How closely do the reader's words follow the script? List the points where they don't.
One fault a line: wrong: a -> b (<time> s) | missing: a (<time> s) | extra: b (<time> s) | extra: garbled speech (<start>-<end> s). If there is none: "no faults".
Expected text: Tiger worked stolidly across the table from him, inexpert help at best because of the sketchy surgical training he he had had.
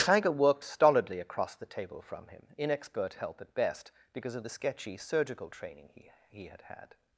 no faults